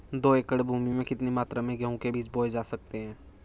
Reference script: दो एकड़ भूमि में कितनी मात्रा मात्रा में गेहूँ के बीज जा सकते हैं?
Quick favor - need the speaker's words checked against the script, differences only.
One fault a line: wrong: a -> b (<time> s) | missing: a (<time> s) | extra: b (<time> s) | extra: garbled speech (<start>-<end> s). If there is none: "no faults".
missing: मात्रा (1.6 s)
extra: बोये (2.3 s)